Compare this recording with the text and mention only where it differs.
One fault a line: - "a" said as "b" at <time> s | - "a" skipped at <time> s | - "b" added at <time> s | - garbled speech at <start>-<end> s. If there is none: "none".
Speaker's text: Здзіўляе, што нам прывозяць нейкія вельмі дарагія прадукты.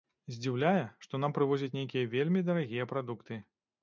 none